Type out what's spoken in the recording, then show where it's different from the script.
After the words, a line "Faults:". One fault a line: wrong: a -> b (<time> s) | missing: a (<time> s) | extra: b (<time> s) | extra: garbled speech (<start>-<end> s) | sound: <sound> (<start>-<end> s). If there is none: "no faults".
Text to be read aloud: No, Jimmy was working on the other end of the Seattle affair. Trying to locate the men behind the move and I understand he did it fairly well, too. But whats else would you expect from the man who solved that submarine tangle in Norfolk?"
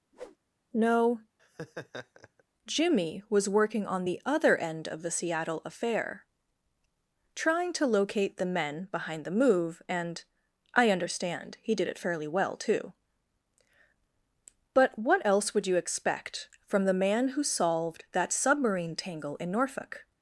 No, Jimmy was working on the other end of the Seattle affair. Trying to locate the men behind the move and I understand he did it fairly well, too. But what else would you expect from the man who solved that submarine tangle in Norfolk?"
Faults:
sound: whoosh (0.1-0.4 s)
sound: laugh (1.4-2.4 s)
wrong: whats -> what (15.0 s)